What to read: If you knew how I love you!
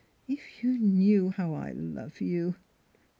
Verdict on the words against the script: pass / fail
pass